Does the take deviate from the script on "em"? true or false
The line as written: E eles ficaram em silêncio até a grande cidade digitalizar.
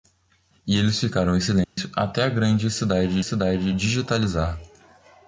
false